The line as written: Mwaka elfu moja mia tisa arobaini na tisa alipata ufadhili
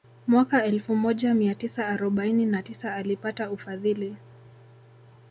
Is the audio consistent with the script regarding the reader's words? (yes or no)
yes